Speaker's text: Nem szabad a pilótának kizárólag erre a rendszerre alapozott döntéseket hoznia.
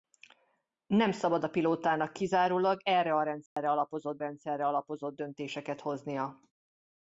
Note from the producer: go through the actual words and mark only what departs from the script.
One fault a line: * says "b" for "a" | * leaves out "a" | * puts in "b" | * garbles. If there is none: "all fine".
* puts in "rendszerre alapozott"